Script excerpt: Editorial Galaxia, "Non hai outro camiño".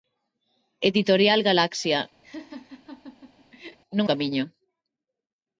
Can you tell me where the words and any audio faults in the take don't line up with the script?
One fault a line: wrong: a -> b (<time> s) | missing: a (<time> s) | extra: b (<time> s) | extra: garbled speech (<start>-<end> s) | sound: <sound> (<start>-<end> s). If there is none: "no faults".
sound: laugh (2.2-3.8 s)
missing: hai outro (4.1 s)